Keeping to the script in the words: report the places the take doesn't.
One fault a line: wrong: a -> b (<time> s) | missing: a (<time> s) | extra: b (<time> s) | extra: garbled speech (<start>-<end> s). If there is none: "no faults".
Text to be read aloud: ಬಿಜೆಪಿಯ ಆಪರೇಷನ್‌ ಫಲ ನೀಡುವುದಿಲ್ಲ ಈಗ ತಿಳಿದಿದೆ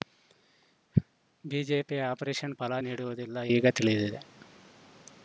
no faults